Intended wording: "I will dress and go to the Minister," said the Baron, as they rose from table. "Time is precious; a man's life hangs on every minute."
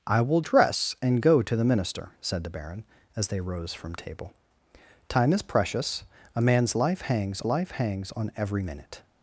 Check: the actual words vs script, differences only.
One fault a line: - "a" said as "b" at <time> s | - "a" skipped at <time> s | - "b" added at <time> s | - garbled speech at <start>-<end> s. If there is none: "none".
- "life hangs" added at 7.4 s